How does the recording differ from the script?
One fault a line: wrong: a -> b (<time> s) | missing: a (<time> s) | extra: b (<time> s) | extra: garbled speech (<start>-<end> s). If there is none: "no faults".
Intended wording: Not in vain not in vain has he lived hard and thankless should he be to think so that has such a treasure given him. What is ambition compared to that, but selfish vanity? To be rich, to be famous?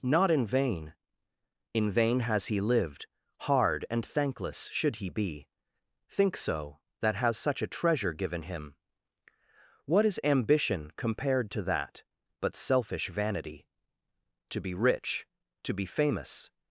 missing: not (0.9 s)
missing: to (5.5 s)